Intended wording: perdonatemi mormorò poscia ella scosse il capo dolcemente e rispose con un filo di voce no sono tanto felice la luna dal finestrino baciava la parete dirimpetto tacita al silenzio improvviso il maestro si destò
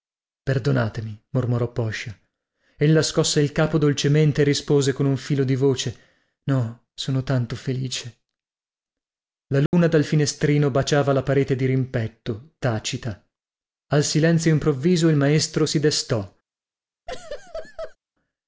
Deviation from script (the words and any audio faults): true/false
true